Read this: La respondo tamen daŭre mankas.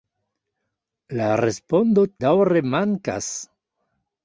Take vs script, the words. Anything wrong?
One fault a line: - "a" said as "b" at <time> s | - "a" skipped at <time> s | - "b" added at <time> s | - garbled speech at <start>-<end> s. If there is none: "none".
- "tamen" skipped at 2.0 s